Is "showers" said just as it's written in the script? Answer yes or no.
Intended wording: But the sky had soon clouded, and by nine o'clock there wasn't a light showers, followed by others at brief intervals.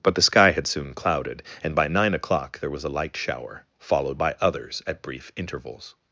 no